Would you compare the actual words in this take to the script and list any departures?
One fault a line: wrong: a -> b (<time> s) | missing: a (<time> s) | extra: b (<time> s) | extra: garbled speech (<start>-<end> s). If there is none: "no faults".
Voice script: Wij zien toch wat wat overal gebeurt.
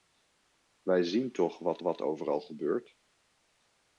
no faults